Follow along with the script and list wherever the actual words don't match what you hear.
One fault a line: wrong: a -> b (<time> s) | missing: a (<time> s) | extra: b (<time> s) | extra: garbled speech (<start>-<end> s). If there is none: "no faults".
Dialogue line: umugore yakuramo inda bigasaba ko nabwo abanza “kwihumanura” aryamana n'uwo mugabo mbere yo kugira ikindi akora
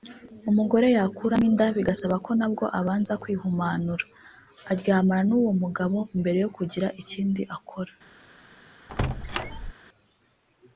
no faults